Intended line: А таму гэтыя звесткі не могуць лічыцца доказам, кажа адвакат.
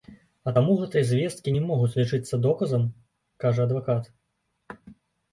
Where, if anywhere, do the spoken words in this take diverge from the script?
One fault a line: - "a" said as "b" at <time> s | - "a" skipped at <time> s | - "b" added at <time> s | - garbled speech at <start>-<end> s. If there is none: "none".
none